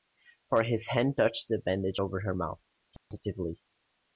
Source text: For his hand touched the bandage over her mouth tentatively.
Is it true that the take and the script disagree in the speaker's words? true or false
false